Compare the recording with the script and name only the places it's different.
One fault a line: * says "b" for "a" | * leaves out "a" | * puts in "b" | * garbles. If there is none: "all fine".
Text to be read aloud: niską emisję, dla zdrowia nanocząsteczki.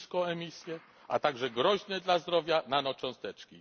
* puts in "a także groźne"